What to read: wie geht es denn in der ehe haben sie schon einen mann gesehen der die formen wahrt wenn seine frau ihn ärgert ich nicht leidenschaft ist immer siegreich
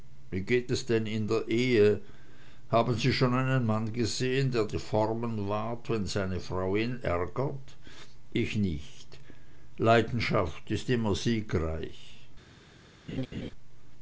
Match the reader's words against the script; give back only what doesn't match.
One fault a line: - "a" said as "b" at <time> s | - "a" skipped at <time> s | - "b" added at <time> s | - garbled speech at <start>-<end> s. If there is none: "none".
none